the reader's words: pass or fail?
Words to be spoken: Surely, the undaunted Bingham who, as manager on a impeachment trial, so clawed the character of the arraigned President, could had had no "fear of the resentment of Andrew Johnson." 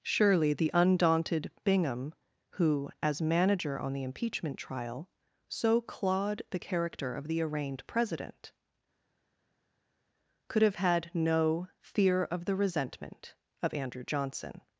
fail